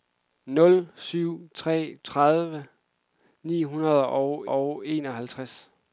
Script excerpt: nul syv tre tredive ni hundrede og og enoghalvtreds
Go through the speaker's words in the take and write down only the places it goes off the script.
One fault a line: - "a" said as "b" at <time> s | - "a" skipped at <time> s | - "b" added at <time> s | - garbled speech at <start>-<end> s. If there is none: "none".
none